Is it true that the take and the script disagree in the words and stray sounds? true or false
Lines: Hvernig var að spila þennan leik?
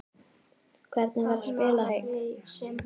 true